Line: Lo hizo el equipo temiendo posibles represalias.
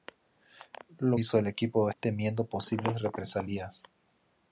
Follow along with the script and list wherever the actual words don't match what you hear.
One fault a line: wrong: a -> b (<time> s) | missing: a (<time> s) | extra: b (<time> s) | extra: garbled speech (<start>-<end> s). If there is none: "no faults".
no faults